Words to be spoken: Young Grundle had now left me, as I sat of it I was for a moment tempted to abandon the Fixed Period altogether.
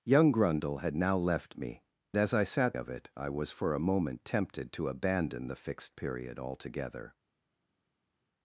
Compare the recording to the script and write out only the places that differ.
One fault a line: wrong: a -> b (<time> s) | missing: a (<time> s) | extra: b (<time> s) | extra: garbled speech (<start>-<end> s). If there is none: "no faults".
no faults